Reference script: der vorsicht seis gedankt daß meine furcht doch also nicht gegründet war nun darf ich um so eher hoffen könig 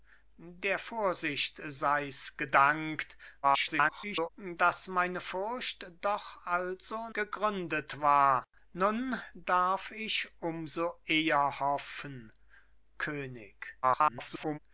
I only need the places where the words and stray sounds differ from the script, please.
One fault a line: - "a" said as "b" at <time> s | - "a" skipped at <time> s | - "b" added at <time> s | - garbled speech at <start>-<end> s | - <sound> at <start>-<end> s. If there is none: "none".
- garbled speech at 3.4-4.3 s
- "nicht" skipped at 7.1 s
- garbled speech at 13.8-14.6 s